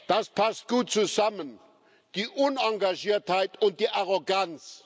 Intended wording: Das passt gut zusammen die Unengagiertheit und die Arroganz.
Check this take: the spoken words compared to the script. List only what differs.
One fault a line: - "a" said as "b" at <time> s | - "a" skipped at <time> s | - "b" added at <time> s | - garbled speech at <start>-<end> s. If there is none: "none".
none